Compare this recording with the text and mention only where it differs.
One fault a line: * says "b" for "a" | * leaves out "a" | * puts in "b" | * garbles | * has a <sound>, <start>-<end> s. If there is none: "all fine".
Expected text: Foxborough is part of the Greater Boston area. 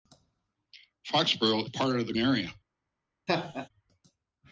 * leaves out "is"
* leaves out "Greater Boston"
* has a laugh, 3.3-3.7 s